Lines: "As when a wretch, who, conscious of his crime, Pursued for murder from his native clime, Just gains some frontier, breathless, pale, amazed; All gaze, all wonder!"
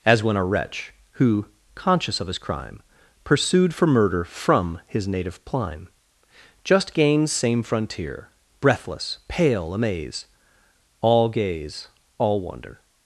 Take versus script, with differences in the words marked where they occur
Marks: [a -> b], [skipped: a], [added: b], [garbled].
"As when a wretch, who, conscious of his crime, Pursued for murder from his native clime, Just gains [some -> same] frontier, breathless, pale, [amazed; -> amaze] All gaze, all wonder!"